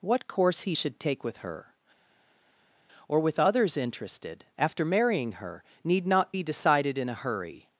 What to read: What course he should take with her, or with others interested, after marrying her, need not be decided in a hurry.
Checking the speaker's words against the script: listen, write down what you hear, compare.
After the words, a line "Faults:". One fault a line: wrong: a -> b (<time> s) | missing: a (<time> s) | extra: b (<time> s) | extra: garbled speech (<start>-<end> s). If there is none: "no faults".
What course he should take with her, or with others interested, after marrying her, need not be decided in a hurry.
Faults:
no faults